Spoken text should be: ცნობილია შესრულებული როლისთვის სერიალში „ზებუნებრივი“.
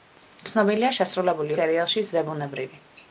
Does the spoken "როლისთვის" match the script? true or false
false